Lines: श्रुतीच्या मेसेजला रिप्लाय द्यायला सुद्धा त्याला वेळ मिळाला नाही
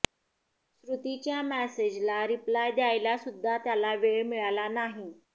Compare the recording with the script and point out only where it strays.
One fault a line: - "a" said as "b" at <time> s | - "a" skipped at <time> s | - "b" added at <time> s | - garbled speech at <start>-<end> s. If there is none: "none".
none